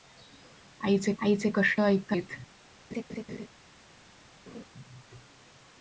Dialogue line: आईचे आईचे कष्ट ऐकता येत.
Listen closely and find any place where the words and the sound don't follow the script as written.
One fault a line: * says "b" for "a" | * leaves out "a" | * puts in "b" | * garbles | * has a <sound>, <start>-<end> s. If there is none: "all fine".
* has a laugh, 2.9-3.5 s
* has a laugh, 4.5-4.6 s